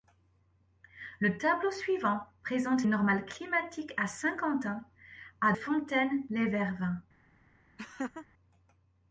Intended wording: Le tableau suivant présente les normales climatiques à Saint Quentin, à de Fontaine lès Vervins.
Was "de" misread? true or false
true